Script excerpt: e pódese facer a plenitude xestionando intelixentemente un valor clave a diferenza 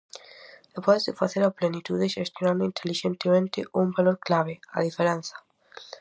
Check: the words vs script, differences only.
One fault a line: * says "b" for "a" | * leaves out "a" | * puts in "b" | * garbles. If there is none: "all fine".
all fine